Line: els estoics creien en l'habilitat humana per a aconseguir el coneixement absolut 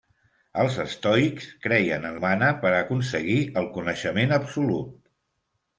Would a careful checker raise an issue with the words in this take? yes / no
yes